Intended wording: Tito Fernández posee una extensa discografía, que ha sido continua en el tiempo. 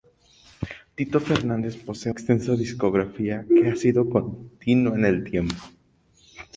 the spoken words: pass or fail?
fail